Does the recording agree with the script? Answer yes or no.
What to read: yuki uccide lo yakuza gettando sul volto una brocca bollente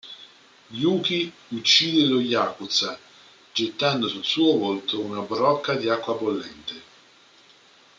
no